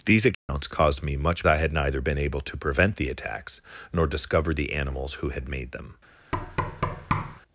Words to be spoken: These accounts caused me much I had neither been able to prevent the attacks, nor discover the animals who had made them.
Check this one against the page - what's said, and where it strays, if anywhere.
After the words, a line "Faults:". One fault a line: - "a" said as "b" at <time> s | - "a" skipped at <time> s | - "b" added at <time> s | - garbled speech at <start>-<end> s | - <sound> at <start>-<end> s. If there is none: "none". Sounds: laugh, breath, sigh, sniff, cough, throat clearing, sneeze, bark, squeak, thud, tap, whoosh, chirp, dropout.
These accounts caused me much I had neither been able to prevent the attacks, nor discover the animals who had made them.
Faults:
- dropout at 0.3-0.5 s
- thud at 6.3-7.4 s